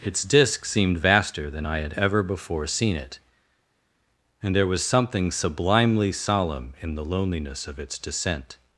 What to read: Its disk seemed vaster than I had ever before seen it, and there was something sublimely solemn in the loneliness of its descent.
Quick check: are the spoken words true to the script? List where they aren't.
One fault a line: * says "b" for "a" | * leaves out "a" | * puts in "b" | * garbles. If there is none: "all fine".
all fine